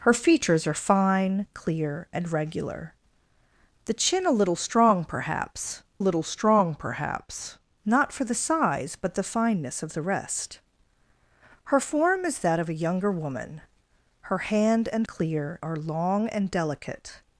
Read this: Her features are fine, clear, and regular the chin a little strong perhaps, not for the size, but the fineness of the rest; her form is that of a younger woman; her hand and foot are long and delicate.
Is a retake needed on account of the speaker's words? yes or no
yes